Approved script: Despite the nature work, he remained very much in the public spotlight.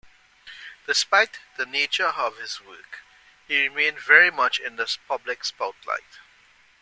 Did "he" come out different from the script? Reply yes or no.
no